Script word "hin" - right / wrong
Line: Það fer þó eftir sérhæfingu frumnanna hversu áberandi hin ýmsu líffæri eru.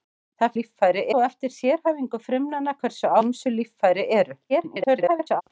wrong